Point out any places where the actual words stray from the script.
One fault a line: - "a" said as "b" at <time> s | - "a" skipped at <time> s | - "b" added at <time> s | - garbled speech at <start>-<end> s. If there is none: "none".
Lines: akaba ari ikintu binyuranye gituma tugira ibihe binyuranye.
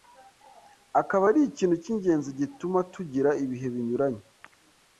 - "binyuranye" said as "cy'ingenzi" at 1.8 s